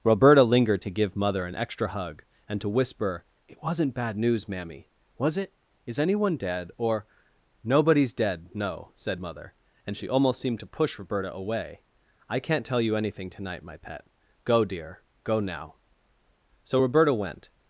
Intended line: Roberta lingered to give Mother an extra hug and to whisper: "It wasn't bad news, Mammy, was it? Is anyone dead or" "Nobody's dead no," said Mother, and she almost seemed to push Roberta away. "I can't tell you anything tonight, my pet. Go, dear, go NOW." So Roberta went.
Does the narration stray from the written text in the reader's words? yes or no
no